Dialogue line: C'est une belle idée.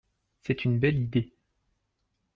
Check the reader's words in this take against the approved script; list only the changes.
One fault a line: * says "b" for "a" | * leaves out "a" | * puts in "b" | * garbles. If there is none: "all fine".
all fine